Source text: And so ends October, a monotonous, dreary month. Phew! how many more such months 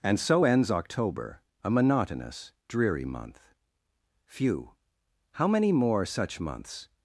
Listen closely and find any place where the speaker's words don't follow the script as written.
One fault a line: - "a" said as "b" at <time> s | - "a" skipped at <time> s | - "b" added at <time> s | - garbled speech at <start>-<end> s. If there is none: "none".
none